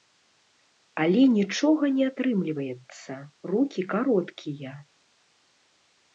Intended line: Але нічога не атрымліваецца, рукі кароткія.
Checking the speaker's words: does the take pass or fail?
pass